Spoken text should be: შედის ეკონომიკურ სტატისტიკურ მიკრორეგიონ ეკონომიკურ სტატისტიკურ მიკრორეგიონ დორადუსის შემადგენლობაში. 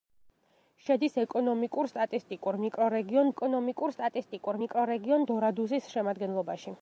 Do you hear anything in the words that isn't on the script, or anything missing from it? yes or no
no